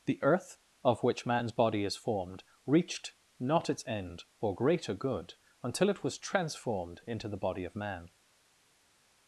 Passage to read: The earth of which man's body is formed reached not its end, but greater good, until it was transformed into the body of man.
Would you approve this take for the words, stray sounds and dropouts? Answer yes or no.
no